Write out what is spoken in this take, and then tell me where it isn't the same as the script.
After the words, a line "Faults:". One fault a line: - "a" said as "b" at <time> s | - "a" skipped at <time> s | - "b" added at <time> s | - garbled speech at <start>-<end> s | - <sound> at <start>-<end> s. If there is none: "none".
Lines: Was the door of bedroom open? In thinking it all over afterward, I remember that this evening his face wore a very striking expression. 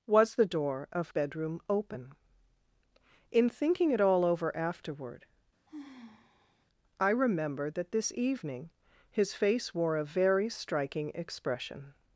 Was the door of bedroom open? In thinking it all over afterward, I remember that this evening his face wore a very striking expression.
Faults:
- sigh at 5.7-6.7 s